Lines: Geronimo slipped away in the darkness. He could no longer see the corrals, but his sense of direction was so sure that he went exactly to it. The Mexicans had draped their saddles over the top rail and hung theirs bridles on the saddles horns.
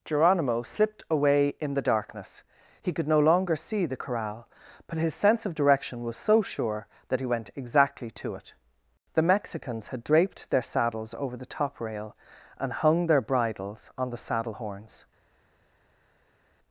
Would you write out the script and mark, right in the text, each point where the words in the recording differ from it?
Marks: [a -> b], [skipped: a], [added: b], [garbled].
Geronimo slipped away in the darkness. He could no longer see the [corrals, -> corral] but his sense of direction was so sure that he went exactly to it. The Mexicans had draped their saddles over the top rail and hung [theirs -> their] bridles on the [saddles -> saddle] horns.